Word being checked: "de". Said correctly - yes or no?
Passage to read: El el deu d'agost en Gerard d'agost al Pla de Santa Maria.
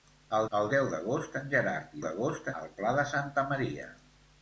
yes